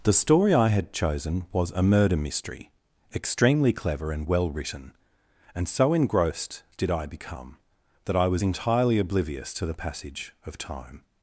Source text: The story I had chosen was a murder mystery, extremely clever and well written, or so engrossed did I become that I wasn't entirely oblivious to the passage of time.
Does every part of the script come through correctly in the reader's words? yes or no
no